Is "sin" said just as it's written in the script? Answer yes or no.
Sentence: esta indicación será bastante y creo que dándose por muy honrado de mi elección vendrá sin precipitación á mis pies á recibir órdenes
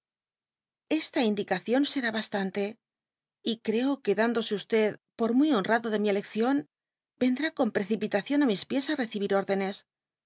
no